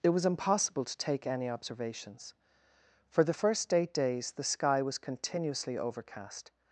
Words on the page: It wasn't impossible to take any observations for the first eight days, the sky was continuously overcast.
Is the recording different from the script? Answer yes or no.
yes